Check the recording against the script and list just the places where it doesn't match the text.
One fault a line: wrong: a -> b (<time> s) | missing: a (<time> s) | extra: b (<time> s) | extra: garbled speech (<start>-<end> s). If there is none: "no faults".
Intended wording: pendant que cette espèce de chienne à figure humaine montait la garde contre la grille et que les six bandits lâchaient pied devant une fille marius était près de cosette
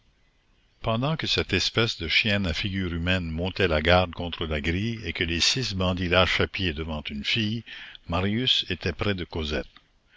no faults